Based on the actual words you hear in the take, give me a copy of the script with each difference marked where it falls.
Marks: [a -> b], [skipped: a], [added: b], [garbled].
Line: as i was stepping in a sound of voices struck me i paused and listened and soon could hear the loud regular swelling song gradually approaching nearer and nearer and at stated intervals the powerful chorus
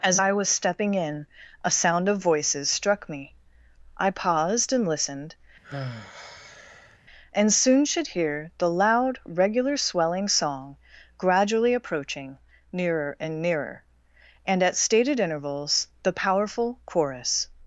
as i was stepping in a sound of voices struck me i paused and listened and soon [could -> should] hear the loud regular swelling song gradually approaching nearer and nearer and at stated intervals the powerful chorus